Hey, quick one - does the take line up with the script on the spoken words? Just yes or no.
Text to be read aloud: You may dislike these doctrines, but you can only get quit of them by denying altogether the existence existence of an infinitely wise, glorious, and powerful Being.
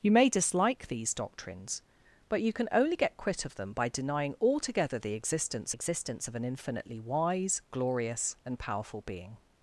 yes